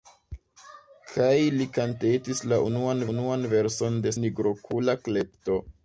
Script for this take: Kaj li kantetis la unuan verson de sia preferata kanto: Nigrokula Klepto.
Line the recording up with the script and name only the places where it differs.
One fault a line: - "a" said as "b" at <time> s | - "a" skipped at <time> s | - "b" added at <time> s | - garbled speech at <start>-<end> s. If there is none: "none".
- "unuan" added at 3.1 s
- "sia preferata kanto" skipped at 4.1 s